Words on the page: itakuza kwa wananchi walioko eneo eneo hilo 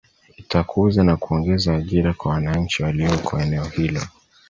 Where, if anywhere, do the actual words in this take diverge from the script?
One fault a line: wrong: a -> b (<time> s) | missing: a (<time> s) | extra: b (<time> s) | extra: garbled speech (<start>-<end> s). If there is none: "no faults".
extra: na kuongeza ajira (1.0 s)
missing: eneo (3.6 s)